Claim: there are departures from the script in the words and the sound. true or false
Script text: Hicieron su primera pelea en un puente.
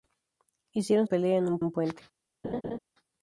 true